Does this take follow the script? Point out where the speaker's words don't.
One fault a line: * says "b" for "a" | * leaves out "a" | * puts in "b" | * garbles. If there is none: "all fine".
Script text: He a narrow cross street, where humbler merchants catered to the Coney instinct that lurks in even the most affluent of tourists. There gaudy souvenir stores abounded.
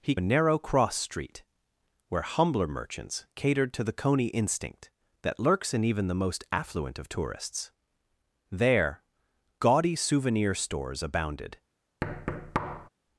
all fine